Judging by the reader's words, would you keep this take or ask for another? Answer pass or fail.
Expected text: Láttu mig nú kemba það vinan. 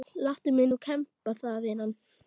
pass